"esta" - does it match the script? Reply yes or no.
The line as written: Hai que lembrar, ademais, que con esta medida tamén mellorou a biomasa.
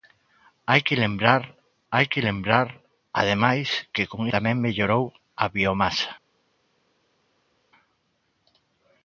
no